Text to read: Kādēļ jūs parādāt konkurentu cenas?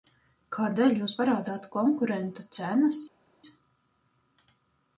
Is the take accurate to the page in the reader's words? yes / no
yes